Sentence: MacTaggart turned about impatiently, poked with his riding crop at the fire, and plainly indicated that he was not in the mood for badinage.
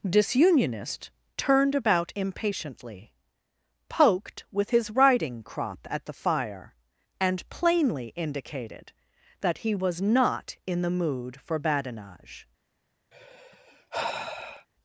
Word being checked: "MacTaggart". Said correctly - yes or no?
no